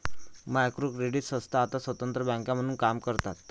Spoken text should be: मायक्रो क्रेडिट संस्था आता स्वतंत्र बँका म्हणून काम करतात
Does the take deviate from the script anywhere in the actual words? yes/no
no